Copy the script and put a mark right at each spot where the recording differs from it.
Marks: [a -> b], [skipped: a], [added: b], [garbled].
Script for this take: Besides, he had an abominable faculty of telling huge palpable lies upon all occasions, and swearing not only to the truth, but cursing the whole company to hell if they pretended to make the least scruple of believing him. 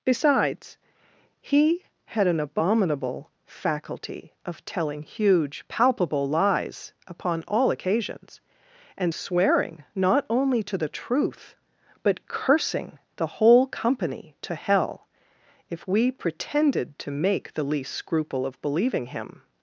Besides, he had an abominable faculty of telling huge palpable lies upon all occasions, and swearing not only to the truth, but cursing the whole company to hell if [they -> we] pretended to make the least scruple of believing him.